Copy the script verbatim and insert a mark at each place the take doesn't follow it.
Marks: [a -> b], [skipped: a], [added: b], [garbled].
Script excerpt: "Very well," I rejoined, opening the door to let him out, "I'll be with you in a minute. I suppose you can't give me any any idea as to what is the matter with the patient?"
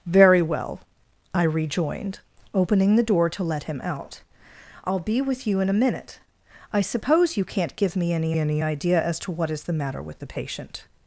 "Very well," I rejoined, opening the door to let him out, "I'll be with you in a minute. I suppose you can't give me any any idea as to what is the matter with the patient?"